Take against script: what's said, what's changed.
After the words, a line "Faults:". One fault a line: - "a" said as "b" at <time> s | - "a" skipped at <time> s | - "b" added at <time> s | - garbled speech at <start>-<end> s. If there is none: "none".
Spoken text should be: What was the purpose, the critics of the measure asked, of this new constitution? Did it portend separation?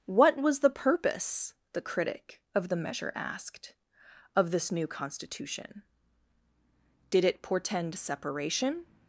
What was the purpose, the critic of the measure asked, of this new constitution? Did it portend separation?
Faults:
- "critics" said as "critic" at 1.8 s